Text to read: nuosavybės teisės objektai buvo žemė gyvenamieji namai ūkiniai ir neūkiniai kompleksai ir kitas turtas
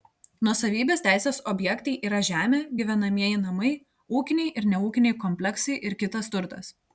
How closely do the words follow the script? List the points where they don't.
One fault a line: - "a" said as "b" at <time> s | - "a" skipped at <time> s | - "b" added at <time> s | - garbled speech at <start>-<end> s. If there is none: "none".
- "buvo" said as "yra" at 2.1 s